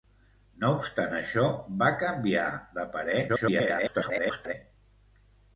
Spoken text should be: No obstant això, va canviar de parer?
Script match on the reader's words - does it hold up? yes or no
no